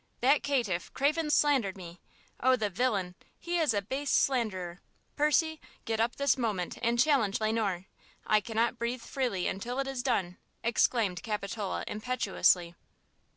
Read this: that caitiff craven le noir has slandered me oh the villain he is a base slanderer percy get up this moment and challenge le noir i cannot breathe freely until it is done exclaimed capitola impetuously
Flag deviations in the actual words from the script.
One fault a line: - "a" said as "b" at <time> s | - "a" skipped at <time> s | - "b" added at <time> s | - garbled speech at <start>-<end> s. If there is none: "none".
- "le noir has" skipped at 1.3 s